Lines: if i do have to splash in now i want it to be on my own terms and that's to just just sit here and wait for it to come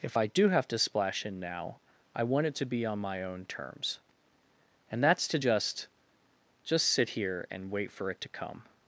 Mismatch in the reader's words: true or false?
false